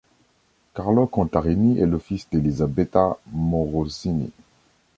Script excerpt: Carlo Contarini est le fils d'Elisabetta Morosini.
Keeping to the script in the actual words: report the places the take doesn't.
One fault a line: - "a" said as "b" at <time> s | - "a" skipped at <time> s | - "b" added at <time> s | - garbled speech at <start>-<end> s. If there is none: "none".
none